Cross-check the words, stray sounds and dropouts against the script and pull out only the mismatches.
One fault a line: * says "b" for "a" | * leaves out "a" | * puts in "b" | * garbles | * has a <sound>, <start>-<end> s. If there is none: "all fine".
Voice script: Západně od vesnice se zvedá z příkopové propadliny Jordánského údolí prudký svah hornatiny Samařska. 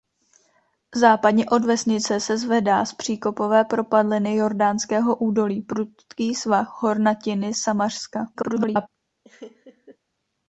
* garbles
* has a laugh, 9.2-10.0 s